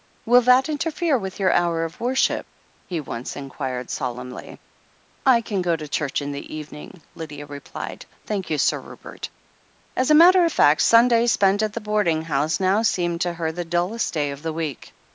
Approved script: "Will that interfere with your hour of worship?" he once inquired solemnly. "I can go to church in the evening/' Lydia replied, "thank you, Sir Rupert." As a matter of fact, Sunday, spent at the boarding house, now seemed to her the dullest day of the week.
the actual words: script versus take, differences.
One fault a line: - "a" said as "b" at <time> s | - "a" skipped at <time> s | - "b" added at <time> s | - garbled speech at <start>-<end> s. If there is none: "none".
none